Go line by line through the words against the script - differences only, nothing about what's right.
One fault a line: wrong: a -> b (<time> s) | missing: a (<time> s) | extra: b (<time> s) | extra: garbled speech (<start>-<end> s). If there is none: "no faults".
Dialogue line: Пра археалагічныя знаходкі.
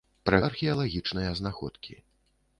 no faults